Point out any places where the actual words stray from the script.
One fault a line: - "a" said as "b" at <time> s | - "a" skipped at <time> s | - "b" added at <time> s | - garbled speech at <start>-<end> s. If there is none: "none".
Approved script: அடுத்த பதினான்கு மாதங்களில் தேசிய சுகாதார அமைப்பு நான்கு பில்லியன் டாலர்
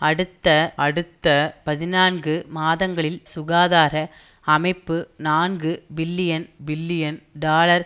- "அடுத்த" added at 0.8 s
- "தேசிய" skipped at 3.2 s
- "பில்லியன்" added at 6.7 s